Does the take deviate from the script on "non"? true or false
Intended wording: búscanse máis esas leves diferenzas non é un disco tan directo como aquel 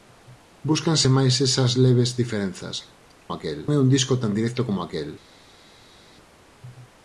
true